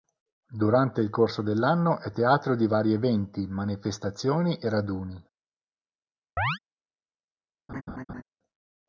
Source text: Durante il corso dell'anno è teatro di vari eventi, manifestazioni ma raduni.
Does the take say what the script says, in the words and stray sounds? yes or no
no